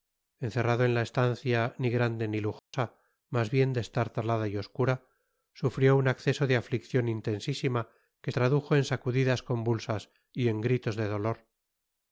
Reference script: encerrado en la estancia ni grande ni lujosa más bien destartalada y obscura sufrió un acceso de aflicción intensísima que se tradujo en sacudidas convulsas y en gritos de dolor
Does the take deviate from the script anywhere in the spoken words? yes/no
yes